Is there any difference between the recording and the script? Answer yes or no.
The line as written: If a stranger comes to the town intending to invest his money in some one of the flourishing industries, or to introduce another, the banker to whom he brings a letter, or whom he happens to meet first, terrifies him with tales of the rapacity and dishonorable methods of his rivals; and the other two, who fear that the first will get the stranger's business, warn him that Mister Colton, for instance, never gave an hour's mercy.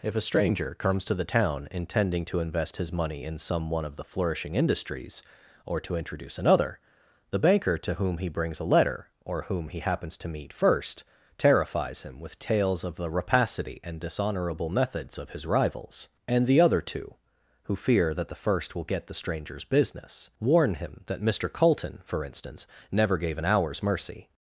no